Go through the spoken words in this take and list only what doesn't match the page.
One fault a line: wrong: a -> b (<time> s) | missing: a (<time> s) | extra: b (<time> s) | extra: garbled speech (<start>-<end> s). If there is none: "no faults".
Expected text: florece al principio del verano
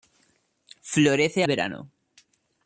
missing: al principio del (1.4 s)